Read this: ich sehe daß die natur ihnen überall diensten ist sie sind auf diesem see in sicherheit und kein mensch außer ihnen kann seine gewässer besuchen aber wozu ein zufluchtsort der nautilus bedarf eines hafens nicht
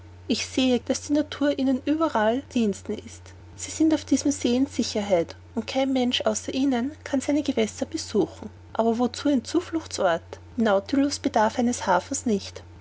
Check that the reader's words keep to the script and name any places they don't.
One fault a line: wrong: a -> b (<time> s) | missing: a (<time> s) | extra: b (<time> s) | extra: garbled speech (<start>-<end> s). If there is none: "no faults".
no faults